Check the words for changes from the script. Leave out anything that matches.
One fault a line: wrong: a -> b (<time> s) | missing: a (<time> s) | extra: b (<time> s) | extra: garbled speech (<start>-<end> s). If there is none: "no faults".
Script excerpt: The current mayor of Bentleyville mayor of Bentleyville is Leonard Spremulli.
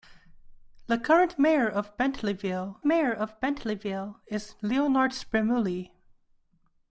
no faults